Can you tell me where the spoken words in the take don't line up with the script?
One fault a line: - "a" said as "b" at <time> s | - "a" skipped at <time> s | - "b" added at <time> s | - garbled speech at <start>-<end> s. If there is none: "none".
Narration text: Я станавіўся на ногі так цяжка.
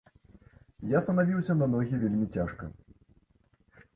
- "так" said as "вельмі" at 2.0 s